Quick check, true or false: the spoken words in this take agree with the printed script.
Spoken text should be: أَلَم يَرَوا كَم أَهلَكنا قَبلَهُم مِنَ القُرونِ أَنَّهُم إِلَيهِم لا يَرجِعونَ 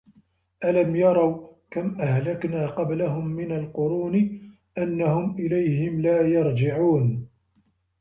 true